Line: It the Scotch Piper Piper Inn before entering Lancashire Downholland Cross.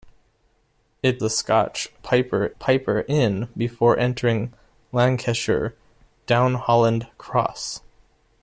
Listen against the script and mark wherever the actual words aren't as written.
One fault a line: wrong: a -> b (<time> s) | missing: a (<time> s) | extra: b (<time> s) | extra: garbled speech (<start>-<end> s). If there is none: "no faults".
no faults